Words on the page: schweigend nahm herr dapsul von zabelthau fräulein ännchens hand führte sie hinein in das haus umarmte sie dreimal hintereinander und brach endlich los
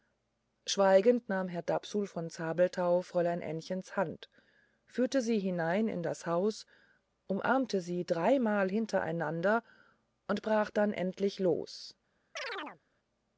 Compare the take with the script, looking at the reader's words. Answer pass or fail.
fail